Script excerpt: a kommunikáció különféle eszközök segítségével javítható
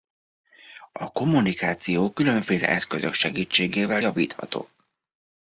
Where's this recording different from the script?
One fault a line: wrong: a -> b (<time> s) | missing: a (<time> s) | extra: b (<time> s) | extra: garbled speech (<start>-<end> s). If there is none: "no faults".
no faults